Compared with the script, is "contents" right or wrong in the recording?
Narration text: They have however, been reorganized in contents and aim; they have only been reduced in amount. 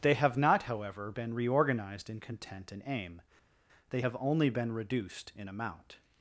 wrong